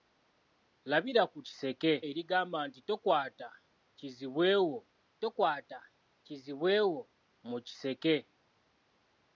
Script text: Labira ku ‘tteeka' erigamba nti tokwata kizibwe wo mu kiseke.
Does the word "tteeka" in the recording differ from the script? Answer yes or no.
yes